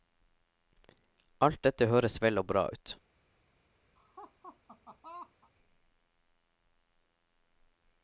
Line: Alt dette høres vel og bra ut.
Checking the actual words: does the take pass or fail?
pass